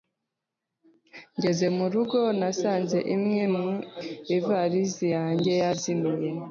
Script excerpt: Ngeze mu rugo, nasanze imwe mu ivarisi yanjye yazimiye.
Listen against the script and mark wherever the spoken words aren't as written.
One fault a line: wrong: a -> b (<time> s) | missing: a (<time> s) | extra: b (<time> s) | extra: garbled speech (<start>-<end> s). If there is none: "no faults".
no faults